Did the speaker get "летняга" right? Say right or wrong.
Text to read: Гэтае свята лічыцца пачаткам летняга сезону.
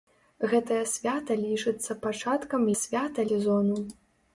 wrong